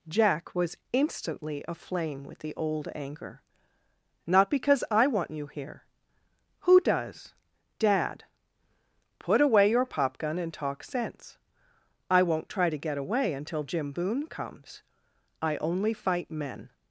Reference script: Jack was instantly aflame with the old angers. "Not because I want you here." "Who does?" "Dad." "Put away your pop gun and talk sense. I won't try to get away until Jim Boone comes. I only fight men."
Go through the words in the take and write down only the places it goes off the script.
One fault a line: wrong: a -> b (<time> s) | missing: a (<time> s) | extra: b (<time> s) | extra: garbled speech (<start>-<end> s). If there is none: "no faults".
wrong: angers -> anger (3.0 s)